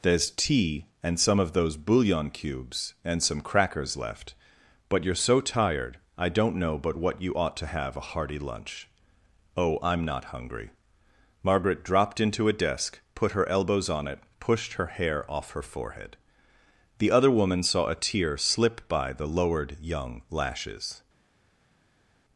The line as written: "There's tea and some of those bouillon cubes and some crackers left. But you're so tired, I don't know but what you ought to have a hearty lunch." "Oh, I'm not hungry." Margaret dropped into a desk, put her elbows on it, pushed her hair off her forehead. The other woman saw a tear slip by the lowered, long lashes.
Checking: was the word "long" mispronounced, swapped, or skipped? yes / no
yes